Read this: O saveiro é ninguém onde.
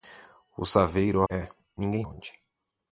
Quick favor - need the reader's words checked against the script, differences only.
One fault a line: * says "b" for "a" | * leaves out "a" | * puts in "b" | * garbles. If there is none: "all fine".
all fine